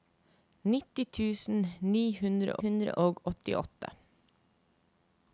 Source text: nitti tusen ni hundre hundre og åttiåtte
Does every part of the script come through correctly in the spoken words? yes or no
yes